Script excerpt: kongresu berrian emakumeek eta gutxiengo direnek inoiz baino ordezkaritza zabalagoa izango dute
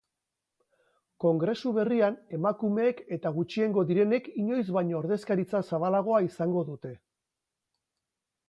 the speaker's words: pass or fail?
pass